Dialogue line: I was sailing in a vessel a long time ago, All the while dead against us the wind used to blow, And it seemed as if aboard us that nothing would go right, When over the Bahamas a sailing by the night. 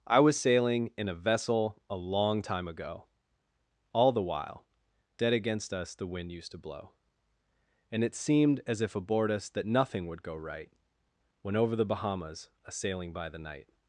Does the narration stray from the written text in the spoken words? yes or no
no